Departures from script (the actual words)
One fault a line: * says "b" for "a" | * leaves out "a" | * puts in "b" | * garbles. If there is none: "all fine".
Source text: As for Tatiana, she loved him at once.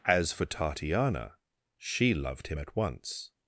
all fine